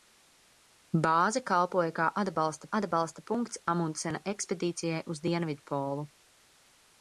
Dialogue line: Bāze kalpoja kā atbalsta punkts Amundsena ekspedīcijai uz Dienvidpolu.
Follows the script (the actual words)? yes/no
no